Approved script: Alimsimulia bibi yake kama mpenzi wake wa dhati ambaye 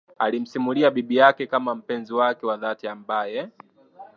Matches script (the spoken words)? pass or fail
pass